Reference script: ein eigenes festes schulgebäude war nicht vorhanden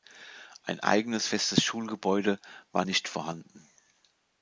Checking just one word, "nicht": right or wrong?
right